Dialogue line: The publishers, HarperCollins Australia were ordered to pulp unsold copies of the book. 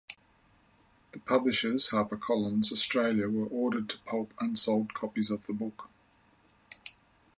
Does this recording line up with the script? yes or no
yes